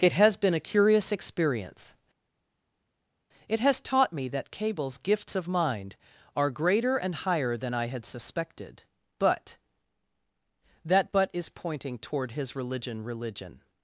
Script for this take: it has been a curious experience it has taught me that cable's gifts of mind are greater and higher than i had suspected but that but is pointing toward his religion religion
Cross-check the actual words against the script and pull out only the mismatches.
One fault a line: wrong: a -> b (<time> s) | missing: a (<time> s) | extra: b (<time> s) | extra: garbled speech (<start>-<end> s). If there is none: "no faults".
no faults